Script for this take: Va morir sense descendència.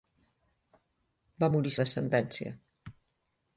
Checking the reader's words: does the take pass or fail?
fail